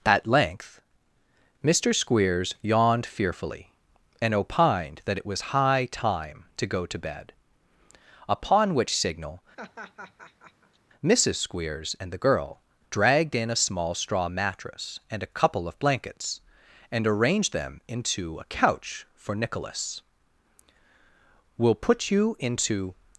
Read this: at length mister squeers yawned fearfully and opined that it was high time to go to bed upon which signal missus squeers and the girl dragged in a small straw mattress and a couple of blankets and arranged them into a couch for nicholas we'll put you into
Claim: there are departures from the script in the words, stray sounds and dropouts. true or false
true